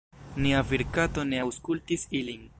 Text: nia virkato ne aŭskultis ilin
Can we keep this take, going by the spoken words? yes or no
yes